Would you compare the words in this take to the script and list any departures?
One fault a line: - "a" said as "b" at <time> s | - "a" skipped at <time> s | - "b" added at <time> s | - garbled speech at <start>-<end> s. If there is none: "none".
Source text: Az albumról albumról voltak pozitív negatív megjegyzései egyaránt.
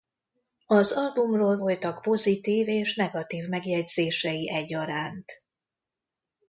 - "albumról" skipped at 1.6 s
- "és" added at 2.7 s